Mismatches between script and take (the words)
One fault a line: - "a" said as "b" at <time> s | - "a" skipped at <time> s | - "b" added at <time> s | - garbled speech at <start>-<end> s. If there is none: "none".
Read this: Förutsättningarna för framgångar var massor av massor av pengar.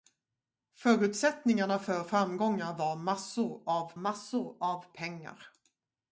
none